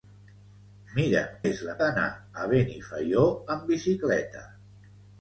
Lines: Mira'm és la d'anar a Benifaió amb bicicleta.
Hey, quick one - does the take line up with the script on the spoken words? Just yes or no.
yes